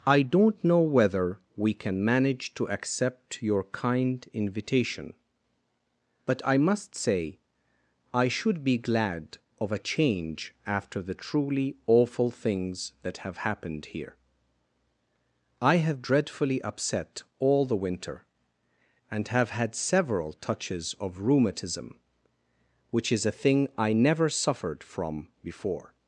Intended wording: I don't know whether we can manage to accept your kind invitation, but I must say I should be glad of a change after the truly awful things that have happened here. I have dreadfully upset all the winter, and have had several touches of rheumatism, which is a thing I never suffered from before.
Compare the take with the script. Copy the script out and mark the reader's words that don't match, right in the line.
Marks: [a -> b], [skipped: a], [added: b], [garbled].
I don't know whether we can manage to accept your kind invitation, but I must say I should be glad of a change after the truly awful things that have happened here. I have dreadfully upset all the winter, and have had several touches of rheumatism, which is a thing I never suffered from before.